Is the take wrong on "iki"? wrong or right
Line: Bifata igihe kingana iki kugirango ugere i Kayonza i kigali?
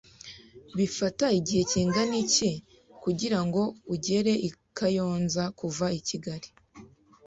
right